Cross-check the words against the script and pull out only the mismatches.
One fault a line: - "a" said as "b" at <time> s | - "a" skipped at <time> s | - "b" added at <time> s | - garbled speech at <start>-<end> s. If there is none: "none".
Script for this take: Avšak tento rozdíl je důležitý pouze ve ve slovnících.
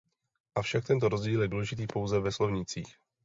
- "ve" skipped at 2.3 s